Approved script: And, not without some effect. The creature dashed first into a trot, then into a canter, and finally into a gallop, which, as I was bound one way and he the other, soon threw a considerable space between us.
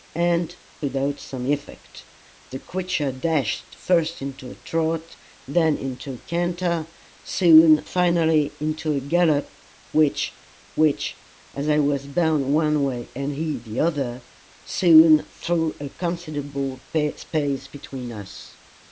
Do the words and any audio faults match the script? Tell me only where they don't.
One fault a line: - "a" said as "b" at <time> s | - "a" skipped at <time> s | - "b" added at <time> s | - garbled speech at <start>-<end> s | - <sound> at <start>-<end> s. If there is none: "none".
- "not" skipped at 0.6 s
- "and" said as "soon" at 7.2 s
- "which" added at 10.7 s